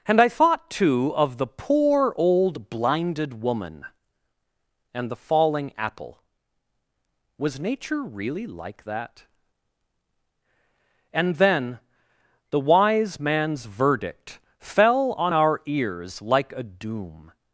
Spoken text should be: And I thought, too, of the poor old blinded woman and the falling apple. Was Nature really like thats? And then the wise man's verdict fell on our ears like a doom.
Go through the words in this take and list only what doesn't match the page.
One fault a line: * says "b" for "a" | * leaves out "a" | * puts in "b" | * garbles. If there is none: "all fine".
* says "that" for "thats"